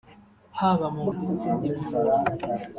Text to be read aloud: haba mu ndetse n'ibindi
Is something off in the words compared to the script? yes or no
no